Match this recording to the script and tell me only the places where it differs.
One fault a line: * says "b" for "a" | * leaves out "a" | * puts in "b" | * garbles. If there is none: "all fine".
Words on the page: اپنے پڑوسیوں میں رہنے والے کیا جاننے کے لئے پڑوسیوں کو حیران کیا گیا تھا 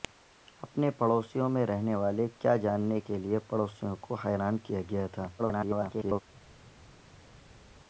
* garbles